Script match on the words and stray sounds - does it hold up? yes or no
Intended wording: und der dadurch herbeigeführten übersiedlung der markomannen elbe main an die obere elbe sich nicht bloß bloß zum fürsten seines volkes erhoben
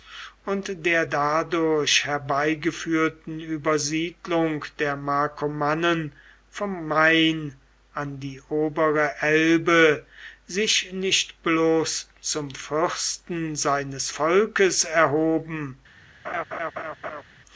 no